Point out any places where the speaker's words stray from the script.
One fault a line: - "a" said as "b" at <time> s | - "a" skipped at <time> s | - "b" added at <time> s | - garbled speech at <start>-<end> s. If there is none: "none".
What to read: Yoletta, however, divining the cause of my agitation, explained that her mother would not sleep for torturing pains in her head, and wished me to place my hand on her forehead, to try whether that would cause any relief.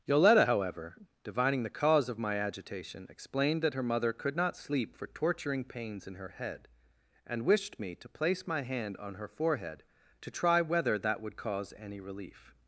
- "would" said as "could" at 4.1 s